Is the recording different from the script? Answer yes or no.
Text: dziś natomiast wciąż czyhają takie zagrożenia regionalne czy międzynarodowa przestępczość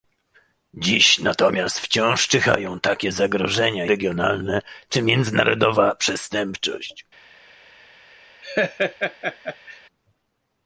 no